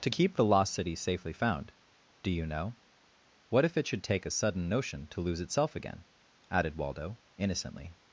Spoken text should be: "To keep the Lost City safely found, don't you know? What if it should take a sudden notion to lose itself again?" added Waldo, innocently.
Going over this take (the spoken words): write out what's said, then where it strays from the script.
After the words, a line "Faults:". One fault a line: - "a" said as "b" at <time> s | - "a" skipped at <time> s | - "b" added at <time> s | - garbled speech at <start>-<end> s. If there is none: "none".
"To keep the Lost City safely found, do you know? What if it should take a sudden notion to lose itself again?" added Waldo, innocently.
Faults:
- "don't" said as "do" at 2.2 s